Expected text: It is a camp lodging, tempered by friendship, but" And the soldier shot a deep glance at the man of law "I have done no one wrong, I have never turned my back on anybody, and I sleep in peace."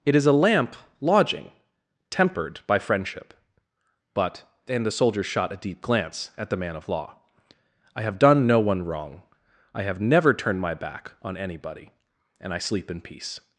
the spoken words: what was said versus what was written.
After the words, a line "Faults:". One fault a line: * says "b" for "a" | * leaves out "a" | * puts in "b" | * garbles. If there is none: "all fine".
It is a lamp lodging, tempered by friendship, but" And the soldier shot a deep glance at the man of law "I have done no one wrong, I have never turned my back on anybody, and I sleep in peace."
Faults:
* says "lamp" for "camp"